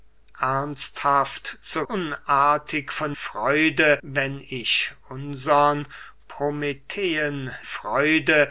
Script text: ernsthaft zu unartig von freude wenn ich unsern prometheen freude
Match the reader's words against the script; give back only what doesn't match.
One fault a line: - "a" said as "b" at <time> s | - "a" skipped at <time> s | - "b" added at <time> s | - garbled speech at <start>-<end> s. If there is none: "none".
none